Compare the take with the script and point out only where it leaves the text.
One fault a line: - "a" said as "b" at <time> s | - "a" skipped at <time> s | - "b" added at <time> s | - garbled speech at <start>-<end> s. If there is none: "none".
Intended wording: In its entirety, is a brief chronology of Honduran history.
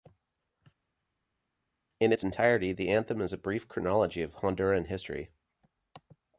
- "the anthem" added at 2.7 s